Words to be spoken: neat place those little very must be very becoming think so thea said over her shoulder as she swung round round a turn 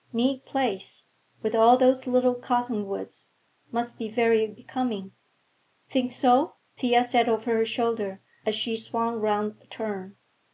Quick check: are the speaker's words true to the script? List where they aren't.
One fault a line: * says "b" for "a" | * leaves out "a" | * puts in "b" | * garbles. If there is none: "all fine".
* puts in "with all"
* says "cottonwoods" for "very"
* leaves out "round"